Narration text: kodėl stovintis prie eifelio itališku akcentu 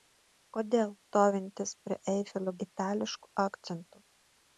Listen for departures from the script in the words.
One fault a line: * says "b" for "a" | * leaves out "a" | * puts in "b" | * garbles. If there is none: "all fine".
all fine